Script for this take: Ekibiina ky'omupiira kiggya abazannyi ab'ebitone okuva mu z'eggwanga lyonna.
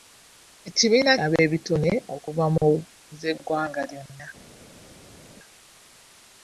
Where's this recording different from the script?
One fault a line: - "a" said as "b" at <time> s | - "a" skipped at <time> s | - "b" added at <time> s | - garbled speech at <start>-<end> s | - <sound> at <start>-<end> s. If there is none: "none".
- "ky'omupiira kiggya abazannyi" skipped at 1.1 s